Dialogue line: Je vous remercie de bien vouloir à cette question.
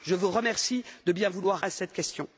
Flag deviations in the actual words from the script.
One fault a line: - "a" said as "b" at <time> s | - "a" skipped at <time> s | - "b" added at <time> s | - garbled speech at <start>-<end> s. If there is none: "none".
none